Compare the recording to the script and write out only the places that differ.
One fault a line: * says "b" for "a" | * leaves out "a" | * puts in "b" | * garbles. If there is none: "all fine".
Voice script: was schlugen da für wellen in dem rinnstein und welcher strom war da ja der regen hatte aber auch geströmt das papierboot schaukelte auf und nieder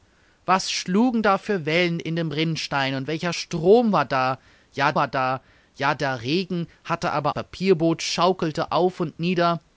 * puts in "war da ja"
* leaves out "auch geströmt das"